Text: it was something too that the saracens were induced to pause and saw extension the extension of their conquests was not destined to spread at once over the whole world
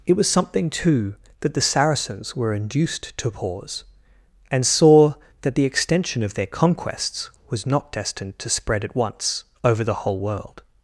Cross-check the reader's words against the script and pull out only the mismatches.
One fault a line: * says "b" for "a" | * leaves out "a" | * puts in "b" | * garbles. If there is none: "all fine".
* says "that" for "extension"